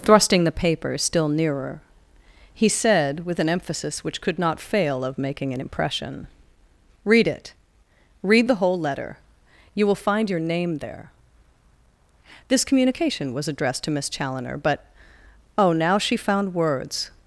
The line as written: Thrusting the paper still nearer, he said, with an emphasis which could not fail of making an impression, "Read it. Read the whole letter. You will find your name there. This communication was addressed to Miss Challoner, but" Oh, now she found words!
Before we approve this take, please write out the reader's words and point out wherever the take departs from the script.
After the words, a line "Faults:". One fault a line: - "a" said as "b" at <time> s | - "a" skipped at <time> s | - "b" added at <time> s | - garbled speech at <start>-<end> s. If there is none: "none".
Thrusting the paper still nearer, he said, with an emphasis which could not fail of making an impression, "Read it. Read the whole letter. You will find your name there. This communication was addressed to Miss Challoner, but" Oh, now she found words!
Faults:
none